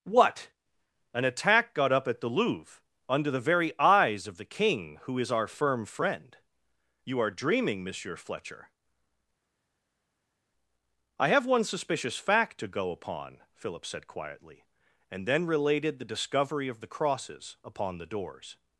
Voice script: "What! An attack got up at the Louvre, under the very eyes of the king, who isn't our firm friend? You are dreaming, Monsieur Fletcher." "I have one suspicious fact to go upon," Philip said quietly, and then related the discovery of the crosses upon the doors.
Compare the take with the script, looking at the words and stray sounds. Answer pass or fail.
fail